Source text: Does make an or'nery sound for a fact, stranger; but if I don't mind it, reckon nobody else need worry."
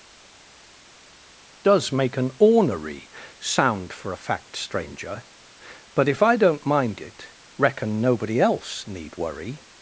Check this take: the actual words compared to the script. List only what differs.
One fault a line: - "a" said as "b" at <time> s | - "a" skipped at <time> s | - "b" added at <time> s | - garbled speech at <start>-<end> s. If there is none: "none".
none